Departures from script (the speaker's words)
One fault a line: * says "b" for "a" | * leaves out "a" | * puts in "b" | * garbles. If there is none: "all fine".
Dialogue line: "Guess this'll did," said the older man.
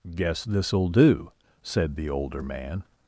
* says "do" for "did"